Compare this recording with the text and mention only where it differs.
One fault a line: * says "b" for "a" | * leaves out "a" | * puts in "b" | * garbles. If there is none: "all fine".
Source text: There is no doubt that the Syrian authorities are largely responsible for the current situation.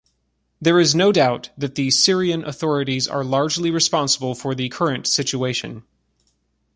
all fine